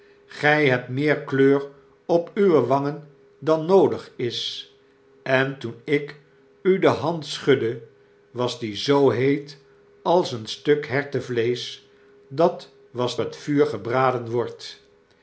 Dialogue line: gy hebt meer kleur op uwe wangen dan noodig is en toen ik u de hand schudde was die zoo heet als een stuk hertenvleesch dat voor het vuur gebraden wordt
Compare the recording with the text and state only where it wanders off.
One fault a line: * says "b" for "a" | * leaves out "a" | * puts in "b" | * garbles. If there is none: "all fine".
* says "was" for "voor"